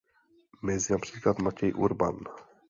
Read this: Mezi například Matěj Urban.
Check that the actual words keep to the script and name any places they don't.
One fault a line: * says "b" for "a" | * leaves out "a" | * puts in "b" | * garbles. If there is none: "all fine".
all fine